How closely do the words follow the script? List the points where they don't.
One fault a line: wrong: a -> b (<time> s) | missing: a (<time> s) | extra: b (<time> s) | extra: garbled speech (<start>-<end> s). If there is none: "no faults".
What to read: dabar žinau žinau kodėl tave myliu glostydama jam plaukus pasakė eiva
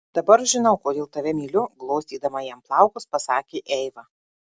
missing: žinau (0.8 s)